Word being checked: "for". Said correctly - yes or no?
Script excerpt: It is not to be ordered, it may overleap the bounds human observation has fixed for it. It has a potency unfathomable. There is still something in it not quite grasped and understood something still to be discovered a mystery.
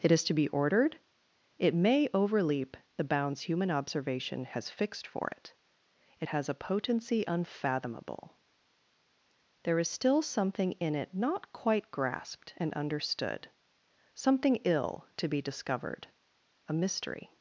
yes